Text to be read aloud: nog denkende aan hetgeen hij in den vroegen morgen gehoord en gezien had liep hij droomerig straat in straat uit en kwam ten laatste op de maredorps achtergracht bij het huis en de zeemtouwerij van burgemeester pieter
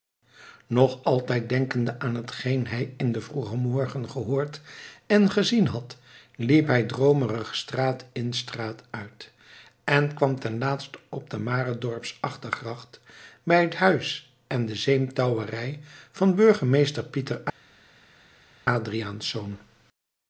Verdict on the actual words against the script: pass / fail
fail